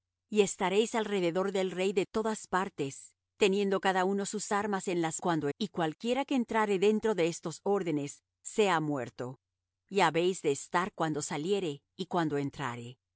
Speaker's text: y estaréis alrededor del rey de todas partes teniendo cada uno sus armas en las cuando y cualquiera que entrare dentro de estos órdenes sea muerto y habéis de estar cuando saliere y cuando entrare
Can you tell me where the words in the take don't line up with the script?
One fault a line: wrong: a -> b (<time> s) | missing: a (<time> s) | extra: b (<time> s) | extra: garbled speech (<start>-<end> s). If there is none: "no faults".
no faults